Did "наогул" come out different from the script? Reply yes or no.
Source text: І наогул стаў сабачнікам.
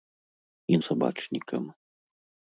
yes